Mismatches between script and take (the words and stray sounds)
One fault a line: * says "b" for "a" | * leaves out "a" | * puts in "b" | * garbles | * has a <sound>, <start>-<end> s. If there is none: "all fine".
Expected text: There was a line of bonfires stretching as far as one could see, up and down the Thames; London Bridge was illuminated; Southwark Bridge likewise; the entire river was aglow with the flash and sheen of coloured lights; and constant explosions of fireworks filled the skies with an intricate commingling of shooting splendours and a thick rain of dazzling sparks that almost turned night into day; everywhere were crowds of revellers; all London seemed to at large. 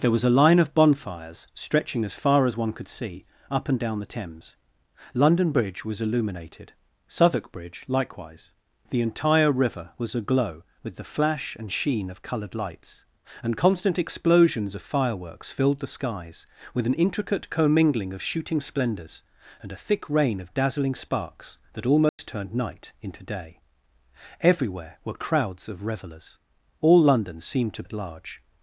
* has a dropout, 22.1-22.2 s